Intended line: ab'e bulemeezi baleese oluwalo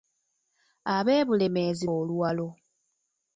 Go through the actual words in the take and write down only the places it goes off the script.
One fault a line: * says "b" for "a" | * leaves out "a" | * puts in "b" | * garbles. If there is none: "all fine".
* leaves out "baleese"